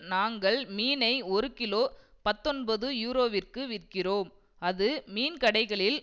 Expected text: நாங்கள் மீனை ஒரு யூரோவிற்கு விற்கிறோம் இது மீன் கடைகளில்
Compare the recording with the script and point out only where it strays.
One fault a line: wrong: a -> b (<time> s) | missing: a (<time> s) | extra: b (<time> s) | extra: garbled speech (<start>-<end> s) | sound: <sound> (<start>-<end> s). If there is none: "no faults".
extra: கிலோ பத்தொன்பது (1.5 s)
wrong: இது -> அது (4.6 s)